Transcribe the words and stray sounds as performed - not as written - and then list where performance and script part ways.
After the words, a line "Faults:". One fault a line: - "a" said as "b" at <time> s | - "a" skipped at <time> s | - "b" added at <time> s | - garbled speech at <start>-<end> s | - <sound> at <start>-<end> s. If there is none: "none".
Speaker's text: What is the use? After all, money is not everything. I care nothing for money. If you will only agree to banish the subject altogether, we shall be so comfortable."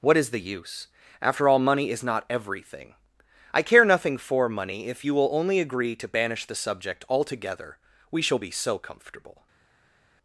What is the use? After all, money is not everything. I care nothing for money. If you will only agree to banish the subject altogether, we shall be so comfortable."
Faults:
none